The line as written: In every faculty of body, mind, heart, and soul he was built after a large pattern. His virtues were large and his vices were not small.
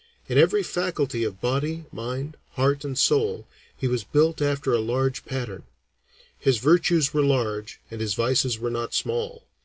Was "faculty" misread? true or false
false